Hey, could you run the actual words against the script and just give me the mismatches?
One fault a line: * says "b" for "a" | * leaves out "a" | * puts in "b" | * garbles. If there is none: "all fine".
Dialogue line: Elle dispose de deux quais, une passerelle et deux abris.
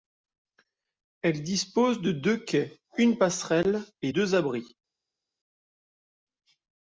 all fine